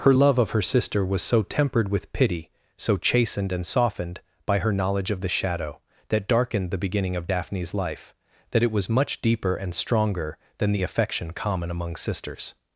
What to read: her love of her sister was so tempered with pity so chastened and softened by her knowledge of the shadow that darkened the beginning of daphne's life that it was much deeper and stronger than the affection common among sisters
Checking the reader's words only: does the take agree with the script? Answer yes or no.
yes